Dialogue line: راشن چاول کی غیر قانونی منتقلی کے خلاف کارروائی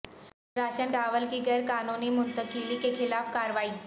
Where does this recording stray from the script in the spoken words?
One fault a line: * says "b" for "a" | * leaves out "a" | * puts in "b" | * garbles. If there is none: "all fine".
all fine